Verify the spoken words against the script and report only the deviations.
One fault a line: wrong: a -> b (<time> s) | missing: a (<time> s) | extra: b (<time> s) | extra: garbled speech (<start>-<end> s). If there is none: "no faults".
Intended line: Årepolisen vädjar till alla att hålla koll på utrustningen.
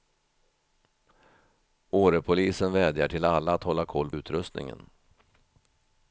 missing: på (4.1 s)